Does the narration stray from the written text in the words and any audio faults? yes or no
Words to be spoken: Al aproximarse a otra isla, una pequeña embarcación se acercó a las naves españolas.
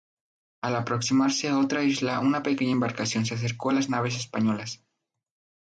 no